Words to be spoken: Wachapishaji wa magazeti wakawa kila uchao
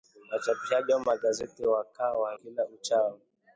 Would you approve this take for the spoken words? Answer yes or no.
yes